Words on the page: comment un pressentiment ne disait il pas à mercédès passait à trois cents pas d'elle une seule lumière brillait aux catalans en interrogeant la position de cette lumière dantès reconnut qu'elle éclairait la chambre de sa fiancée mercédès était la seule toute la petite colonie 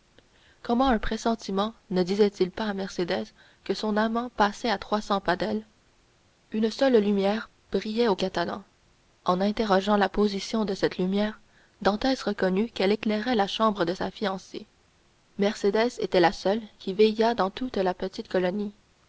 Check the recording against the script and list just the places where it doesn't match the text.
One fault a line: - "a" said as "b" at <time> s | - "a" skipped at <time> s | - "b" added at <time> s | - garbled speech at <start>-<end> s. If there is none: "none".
- "que son amant" added at 3.6 s
- "qui veillât dans" added at 16.8 s